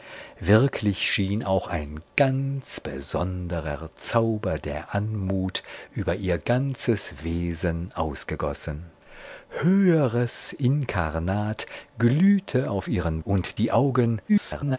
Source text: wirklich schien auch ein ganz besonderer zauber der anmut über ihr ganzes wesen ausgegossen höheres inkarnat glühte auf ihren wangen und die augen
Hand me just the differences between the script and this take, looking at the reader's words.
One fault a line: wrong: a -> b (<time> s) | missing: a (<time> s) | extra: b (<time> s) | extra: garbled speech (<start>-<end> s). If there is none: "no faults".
missing: wangen (13.2 s)
extra: garbled speech (14.3-14.8 s)